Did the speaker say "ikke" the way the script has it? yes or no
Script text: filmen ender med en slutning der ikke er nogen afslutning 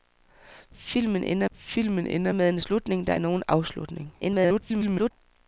no